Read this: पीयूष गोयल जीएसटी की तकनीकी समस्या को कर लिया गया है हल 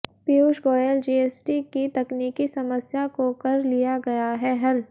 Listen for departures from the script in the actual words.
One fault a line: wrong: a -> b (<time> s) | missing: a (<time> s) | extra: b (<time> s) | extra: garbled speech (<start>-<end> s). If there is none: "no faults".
no faults